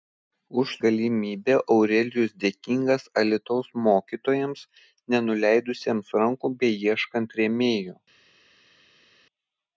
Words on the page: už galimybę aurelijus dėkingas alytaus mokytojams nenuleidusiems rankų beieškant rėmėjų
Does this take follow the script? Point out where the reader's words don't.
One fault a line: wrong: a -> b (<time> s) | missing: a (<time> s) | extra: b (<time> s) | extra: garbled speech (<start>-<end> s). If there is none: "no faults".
no faults